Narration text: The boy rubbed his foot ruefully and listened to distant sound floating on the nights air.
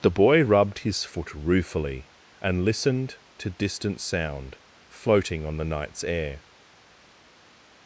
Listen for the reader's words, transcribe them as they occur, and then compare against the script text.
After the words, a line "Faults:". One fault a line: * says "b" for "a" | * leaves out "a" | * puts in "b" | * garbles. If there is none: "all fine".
The boy rubbed his foot ruefully and listened to distant sound floating on the nights air.
Faults:
all fine